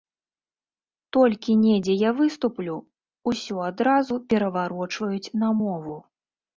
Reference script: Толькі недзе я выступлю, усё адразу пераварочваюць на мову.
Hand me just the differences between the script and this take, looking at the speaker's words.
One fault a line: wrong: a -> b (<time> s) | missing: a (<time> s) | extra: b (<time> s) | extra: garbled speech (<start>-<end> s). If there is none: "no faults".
no faults